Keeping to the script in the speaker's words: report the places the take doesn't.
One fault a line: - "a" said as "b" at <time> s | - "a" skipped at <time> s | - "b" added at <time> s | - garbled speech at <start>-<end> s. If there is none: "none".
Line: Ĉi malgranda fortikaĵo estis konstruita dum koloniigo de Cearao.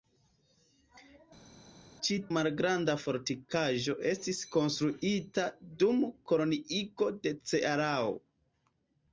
none